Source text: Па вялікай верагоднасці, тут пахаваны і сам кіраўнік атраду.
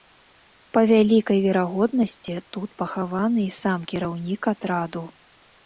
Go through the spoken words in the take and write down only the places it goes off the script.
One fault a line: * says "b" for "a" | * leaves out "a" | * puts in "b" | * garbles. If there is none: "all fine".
all fine